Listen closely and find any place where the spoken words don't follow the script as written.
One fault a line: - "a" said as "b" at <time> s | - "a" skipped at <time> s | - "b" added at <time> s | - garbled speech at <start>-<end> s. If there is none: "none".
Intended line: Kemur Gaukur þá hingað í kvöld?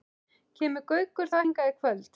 none